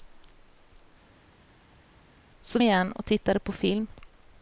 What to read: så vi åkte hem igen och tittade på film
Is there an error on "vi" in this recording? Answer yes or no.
yes